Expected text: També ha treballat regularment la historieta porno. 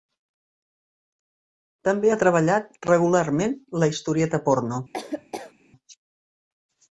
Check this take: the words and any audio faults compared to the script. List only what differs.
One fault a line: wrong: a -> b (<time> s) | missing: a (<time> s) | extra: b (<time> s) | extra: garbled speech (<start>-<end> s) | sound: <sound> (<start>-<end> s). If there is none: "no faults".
sound: laugh (4.9-5.5 s)